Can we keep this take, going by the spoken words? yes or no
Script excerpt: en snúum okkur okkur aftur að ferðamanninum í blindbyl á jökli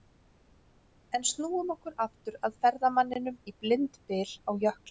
no